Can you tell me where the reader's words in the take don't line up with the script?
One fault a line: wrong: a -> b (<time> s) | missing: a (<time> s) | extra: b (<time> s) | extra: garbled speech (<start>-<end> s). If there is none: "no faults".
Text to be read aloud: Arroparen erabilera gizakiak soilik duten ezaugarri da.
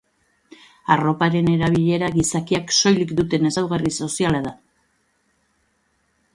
extra: soziala (4.1 s)